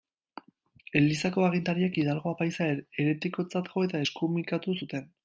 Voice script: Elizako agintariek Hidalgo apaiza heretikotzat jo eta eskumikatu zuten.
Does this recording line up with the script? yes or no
yes